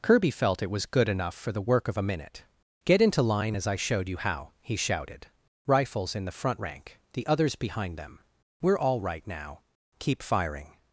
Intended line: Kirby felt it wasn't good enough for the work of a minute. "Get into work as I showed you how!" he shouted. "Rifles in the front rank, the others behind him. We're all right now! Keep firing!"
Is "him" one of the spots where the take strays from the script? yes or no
yes